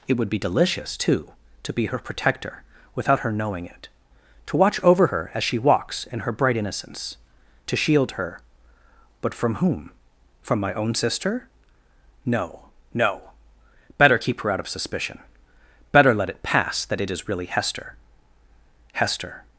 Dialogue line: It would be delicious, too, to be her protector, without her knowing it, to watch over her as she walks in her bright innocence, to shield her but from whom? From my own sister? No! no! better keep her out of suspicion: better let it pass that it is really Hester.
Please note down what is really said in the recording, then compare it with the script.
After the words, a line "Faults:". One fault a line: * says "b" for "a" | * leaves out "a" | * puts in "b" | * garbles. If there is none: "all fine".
It would be delicious, too, to be her protector, without her knowing it, to watch over her as she walks in her bright innocence, to shield her but from whom? From my own sister? No! no! better keep her out of suspicion: better let it pass that it is really Hester. Hester
Faults:
* puts in "Hester"